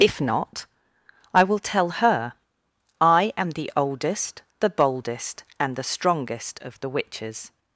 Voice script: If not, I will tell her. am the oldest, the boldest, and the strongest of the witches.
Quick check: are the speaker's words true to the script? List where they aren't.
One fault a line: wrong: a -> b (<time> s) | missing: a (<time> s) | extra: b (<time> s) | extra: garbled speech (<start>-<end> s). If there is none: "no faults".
extra: I (3.0 s)